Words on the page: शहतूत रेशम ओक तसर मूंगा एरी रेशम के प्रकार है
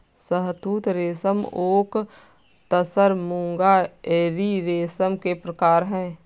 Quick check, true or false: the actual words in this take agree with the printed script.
true